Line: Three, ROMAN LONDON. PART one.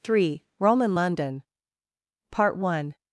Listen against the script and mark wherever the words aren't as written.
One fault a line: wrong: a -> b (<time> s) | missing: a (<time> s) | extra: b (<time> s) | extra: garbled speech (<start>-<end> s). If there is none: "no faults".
no faults